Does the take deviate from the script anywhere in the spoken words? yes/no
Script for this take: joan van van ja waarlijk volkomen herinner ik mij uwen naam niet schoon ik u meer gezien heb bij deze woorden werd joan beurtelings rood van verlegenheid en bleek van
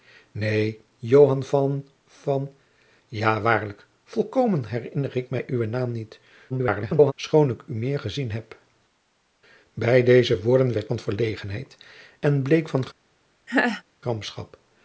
yes